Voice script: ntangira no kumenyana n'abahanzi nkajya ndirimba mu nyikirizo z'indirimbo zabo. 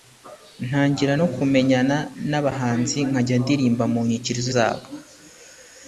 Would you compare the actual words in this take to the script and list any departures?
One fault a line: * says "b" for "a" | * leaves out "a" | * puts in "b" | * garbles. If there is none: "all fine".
* leaves out "z'indirimbo"